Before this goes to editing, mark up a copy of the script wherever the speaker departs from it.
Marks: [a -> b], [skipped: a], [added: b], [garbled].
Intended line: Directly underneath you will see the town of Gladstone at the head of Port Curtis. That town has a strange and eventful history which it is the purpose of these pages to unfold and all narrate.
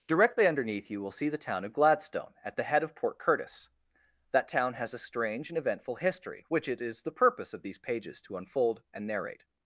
Directly underneath you will see the town of Gladstone at the head of Port Curtis. That town has a strange and eventful history which it is the purpose of these pages to unfold and [skipped: all] narrate.